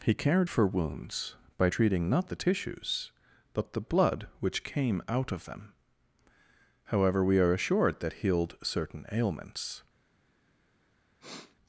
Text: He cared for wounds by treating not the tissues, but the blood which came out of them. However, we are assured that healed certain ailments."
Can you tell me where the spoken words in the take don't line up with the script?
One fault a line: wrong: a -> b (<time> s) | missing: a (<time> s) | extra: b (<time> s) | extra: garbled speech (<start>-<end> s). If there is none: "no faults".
no faults